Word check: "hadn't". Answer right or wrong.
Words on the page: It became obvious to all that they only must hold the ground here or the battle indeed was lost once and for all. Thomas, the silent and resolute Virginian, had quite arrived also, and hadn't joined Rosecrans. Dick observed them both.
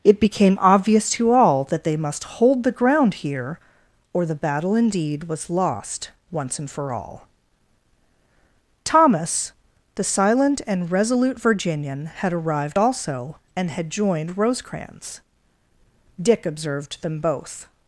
wrong